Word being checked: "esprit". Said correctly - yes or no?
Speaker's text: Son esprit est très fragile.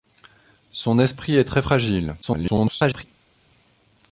yes